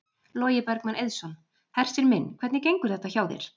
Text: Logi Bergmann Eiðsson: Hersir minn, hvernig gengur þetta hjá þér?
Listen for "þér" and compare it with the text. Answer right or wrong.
right